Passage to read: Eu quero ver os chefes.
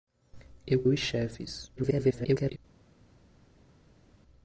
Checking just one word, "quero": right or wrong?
wrong